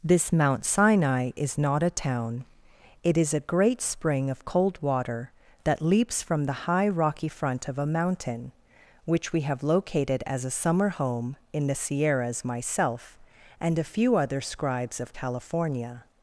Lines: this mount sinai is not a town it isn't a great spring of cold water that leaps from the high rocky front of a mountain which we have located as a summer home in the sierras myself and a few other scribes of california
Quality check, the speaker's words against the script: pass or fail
fail